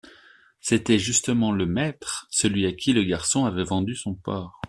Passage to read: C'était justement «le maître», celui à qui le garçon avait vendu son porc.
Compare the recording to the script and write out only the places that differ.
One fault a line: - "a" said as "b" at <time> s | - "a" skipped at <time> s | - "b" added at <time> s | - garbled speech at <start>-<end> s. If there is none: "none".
none